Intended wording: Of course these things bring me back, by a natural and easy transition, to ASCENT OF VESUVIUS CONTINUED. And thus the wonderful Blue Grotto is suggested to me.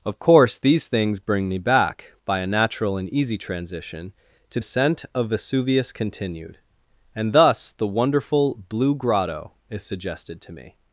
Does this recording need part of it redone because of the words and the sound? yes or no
no